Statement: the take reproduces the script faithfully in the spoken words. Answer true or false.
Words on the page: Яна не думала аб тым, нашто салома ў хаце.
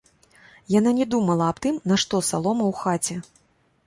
true